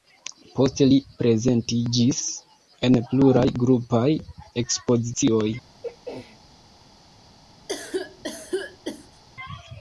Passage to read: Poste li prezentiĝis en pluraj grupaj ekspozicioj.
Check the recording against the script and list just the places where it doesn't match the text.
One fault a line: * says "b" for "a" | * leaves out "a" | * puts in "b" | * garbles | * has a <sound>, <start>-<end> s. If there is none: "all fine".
* has a throat clearing, 5.8-6.4 s
* has a cough, 7.7-9.2 s